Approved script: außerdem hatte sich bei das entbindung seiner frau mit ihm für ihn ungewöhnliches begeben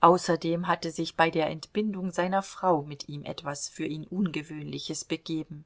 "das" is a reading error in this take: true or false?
true